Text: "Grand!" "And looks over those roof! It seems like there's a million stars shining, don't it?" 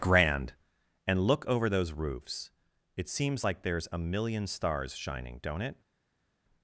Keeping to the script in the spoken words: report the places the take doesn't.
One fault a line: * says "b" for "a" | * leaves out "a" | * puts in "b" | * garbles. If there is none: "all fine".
* says "look" for "looks"
* says "roofs" for "roof"